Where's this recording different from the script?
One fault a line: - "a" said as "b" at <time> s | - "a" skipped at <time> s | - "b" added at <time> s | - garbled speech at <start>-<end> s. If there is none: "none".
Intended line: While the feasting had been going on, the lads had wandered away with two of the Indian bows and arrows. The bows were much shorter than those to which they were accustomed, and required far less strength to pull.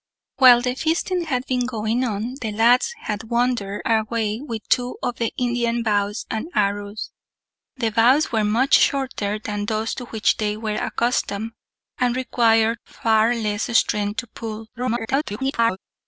- garbled speech at 14.7-15.8 s